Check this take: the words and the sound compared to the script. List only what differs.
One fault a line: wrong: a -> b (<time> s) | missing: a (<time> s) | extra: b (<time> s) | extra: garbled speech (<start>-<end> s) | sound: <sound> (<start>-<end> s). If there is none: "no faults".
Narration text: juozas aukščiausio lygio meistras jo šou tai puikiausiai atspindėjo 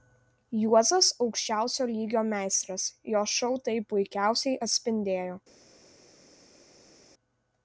no faults